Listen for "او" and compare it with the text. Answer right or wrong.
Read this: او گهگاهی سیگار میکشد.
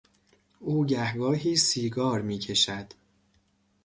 right